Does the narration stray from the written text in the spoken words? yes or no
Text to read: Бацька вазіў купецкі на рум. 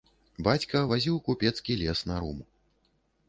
yes